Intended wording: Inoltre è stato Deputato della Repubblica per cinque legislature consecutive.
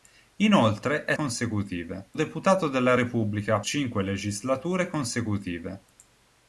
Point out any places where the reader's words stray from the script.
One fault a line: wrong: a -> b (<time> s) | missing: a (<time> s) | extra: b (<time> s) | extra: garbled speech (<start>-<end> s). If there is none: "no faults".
wrong: stato -> consecutive (1.1 s)
missing: per (3.6 s)